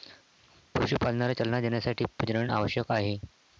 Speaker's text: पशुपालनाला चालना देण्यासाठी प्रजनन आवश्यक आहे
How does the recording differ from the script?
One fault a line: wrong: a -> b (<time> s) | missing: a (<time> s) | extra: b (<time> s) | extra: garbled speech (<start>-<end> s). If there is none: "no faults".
no faults